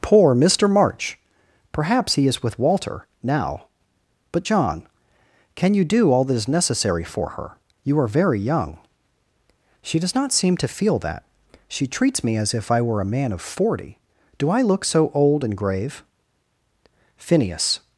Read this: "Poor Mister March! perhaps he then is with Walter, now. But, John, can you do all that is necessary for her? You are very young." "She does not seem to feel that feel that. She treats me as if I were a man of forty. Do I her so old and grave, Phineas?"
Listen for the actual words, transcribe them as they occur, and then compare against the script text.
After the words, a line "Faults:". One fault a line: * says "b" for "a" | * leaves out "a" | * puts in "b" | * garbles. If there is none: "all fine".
"Poor Mister March! perhaps he is with Walter, now. But, John, can you do all that is necessary for her? You are very young." "She does not seem to feel that. She treats me as if I were a man of forty. Do I look so old and grave, Phineas?"
Faults:
* leaves out "then"
* leaves out "feel that"
* says "look" for "her"